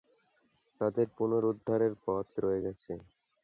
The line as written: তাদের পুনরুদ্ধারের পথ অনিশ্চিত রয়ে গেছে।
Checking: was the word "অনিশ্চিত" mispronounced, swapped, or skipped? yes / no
yes